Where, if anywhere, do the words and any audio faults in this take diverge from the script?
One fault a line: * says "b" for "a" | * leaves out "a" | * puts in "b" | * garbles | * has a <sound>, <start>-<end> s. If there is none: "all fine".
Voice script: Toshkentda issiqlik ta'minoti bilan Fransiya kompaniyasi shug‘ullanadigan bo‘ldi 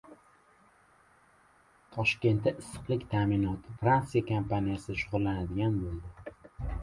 * leaves out "bilan"